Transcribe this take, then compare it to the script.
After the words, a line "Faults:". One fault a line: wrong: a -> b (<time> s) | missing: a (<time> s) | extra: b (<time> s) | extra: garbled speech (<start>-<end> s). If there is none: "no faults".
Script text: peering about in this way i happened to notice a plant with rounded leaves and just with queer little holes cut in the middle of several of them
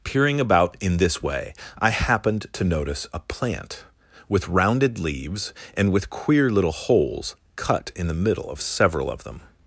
peering about in this way i happened to notice a plant with rounded leaves and with queer little holes cut in the middle of several of them
Faults:
missing: just (5.9 s)